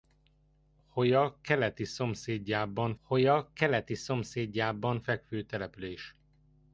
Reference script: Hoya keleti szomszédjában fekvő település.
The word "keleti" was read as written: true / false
true